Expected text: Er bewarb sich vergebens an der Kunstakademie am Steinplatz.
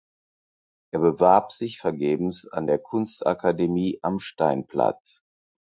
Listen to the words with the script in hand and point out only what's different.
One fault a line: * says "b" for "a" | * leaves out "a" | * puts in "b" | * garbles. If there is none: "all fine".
all fine